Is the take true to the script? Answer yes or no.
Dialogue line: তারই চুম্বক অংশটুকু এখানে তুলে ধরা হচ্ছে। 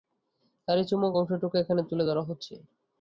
yes